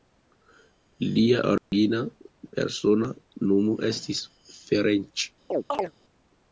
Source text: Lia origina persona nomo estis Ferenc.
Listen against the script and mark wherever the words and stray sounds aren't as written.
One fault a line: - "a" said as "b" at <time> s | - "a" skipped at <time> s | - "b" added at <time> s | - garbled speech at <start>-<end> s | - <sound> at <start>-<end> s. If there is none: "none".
- dropout at 1.6-1.7 s
- chirp at 5.5-5.9 s